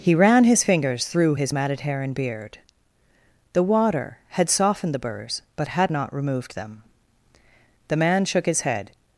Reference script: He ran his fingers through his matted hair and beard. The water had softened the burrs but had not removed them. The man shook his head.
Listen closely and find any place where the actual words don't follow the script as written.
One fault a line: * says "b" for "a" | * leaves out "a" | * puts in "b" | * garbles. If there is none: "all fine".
all fine